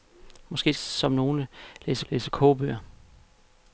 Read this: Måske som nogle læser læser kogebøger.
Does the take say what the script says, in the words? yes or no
yes